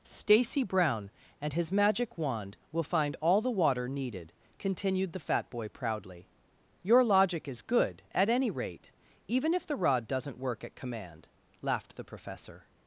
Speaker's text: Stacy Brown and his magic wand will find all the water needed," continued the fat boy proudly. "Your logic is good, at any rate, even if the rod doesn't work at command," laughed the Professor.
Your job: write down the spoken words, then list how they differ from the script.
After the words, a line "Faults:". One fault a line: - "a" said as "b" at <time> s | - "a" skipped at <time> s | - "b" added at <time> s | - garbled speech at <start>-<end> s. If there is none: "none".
Stacy Brown and his magic wand will find all the water needed," continued the fat boy proudly. "Your logic is good, at any rate, even if the rod doesn't work at command," laughed the Professor.
Faults:
none